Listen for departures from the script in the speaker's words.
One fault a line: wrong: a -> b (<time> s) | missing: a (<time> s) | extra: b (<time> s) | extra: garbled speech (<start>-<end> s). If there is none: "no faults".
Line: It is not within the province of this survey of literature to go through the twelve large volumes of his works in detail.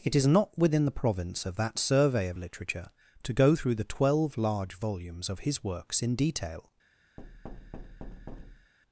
wrong: this -> that (1.6 s)